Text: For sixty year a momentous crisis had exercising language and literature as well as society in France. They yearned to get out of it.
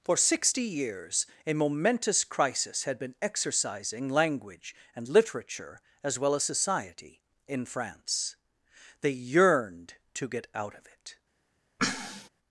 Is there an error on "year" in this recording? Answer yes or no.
yes